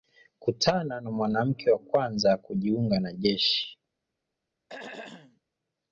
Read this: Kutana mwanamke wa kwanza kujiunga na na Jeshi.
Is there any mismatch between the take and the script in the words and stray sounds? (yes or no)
yes